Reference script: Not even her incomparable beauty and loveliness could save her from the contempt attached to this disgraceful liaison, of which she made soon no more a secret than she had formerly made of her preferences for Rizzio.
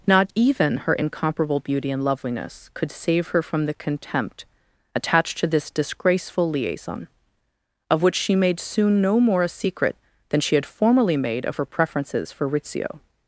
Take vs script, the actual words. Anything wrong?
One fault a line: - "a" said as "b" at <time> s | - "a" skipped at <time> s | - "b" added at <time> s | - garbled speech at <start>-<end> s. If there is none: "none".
none